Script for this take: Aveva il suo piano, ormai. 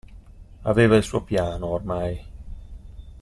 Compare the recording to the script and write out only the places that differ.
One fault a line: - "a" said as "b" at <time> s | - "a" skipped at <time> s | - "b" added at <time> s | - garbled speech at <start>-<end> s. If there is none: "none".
none